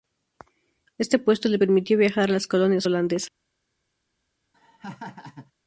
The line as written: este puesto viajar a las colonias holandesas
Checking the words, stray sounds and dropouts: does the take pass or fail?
fail